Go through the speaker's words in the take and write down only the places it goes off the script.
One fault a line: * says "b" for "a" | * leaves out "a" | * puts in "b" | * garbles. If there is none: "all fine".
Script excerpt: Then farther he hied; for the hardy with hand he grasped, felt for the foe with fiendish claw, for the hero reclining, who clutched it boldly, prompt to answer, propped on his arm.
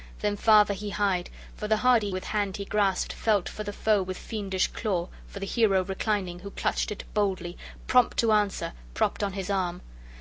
all fine